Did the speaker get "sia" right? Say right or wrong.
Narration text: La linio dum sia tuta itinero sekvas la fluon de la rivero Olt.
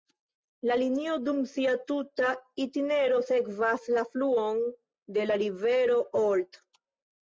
right